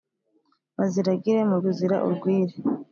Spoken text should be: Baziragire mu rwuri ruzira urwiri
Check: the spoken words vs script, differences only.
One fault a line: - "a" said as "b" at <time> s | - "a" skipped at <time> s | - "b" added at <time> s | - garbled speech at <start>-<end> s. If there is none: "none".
- "rwuri" skipped at 1.6 s